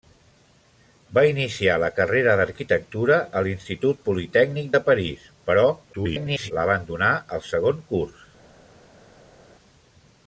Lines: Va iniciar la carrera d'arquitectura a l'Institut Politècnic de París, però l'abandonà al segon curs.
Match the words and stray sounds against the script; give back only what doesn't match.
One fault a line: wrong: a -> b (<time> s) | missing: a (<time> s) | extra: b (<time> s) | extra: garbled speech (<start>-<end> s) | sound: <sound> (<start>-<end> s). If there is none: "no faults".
extra: garbled speech (5.9-6.5 s)